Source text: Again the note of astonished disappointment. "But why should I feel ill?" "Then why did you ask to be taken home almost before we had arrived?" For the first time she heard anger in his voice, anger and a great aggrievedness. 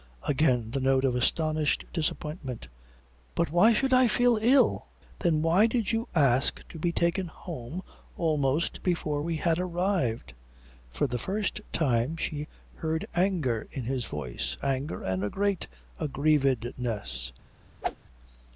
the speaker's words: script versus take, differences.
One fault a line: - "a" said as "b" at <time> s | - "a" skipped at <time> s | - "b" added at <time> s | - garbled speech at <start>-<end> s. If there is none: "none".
none